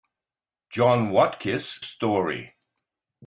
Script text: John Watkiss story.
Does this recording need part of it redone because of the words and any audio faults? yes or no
no